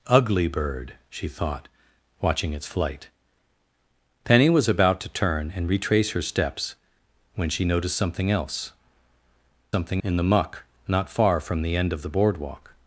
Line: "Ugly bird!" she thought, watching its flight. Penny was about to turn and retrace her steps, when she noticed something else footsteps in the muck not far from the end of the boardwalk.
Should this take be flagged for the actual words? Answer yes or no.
yes